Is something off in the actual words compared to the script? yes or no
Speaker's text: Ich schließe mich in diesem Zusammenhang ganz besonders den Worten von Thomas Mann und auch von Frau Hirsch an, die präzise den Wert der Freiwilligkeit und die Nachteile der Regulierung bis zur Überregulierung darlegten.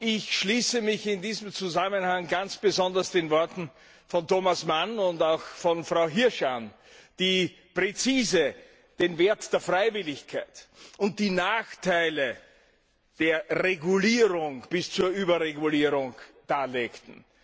no